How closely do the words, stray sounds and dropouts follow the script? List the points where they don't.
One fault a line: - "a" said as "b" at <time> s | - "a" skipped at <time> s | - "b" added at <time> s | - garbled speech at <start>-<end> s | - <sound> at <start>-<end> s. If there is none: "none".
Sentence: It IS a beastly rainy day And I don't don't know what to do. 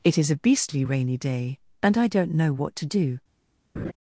- "don't" skipped at 2.3 s
- laugh at 3.8-3.9 s